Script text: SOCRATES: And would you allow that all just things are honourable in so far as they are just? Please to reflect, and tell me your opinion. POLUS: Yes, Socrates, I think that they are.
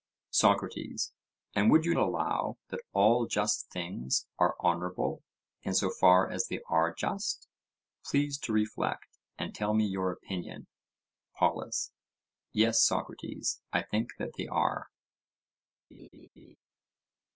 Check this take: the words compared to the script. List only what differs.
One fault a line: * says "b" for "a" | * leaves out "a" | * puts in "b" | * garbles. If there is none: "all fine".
all fine